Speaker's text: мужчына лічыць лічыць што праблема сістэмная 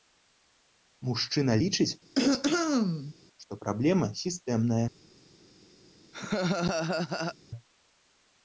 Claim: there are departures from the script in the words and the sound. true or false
true